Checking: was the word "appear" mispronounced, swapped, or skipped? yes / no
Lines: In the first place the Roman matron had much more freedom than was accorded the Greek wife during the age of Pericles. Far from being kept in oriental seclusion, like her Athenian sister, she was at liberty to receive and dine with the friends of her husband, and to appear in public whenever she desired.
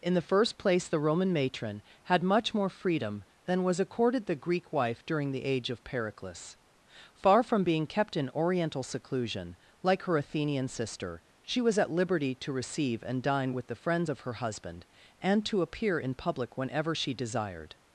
no